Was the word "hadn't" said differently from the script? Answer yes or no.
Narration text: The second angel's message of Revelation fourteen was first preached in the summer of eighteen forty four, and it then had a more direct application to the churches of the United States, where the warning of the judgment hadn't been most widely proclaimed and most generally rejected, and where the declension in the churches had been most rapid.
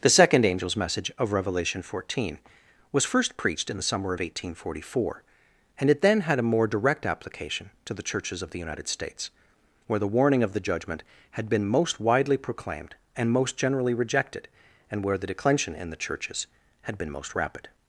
yes